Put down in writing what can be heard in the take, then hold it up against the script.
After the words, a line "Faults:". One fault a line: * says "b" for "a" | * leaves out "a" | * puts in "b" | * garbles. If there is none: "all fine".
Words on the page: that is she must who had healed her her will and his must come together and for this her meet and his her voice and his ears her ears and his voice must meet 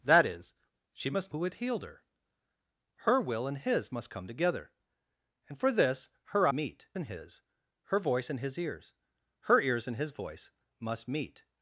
that is she must who had healed her her will and his must come together and for this her meet and his her voice and his ears her ears and his voice must meet
Faults:
all fine